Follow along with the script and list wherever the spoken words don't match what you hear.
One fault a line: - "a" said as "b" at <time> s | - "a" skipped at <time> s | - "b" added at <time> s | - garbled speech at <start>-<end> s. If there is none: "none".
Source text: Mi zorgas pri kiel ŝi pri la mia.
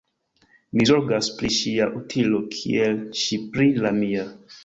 - "ŝia utilo" added at 1.5 s